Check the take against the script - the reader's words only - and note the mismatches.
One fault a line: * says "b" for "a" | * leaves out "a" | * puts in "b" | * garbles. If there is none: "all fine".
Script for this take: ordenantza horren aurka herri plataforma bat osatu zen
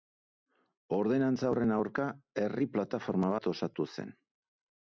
all fine